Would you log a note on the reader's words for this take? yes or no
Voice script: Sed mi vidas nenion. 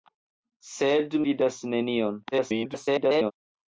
yes